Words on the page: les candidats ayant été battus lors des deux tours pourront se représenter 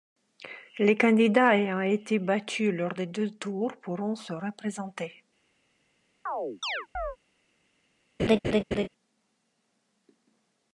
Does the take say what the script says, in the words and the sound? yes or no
no